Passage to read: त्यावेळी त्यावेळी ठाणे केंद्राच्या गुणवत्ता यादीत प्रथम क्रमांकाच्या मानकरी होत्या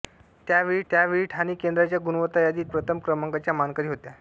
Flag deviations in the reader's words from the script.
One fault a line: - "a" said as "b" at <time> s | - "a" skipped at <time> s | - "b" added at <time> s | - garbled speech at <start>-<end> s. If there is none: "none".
none